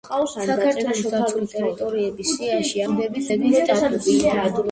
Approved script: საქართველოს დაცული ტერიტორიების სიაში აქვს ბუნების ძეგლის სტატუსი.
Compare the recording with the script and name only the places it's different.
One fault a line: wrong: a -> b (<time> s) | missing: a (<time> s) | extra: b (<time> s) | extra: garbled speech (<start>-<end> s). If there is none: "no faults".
missing: აქვს (2.8 s)